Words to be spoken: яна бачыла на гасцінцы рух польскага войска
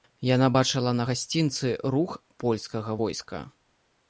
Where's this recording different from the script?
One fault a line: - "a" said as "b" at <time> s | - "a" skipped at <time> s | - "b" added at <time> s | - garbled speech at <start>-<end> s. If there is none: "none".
none